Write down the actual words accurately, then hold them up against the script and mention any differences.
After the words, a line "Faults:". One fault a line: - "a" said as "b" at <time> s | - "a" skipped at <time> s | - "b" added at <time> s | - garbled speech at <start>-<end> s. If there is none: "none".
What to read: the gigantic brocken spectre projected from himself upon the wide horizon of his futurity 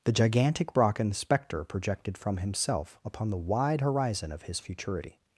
the gigantic brocken spectre projected from himself upon the wide horizon of his futurity
Faults:
none